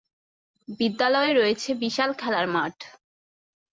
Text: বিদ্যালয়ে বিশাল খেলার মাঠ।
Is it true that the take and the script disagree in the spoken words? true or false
true